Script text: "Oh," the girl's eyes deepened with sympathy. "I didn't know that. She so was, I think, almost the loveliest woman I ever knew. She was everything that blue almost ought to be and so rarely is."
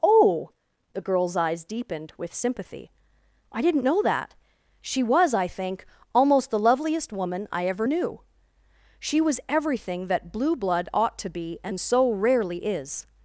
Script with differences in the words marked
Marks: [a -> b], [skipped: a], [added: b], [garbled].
"Oh," the girl's eyes deepened with sympathy. "I didn't know that. She [skipped: so] was, I think, almost the loveliest woman I ever knew. She was everything that blue [almost -> blood] ought to be and so rarely is."